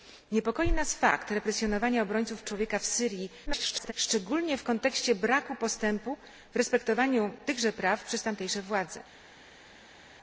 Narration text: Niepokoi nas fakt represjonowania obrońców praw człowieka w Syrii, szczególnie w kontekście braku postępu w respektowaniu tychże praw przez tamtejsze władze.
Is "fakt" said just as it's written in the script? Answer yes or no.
yes